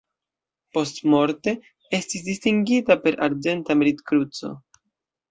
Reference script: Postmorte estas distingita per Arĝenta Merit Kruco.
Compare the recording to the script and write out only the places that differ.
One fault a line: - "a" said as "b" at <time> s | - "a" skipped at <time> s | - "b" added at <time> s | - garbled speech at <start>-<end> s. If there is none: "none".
- "estas" said as "estis" at 2.0 s